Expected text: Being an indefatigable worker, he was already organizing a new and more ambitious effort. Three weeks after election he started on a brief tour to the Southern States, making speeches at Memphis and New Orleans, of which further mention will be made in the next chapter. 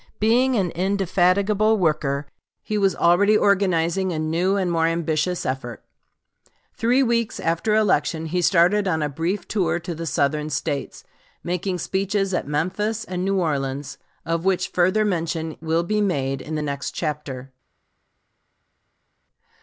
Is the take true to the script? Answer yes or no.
yes